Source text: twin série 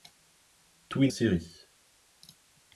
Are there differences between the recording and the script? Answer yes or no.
no